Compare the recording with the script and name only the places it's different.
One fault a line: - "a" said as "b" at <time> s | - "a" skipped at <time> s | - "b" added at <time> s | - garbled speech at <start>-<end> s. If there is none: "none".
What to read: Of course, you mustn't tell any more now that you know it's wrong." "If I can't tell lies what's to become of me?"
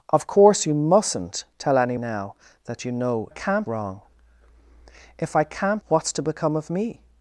- "more" skipped at 2.0 s
- "it's" said as "can't" at 3.3 s
- "tell lies" skipped at 5.8 s